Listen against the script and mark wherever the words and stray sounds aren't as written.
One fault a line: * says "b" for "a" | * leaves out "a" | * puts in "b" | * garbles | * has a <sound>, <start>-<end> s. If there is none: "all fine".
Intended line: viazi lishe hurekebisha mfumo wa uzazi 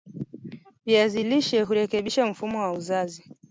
all fine